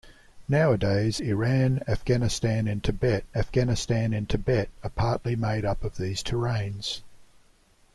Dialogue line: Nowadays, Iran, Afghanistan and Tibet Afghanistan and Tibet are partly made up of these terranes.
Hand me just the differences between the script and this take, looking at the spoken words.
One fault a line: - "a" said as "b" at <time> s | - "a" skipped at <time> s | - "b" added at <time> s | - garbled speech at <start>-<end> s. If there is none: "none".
none